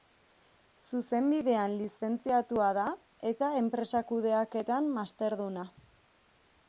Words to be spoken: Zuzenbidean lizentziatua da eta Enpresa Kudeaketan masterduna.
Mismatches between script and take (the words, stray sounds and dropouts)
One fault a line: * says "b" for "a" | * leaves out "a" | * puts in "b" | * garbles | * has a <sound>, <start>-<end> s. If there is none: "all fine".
all fine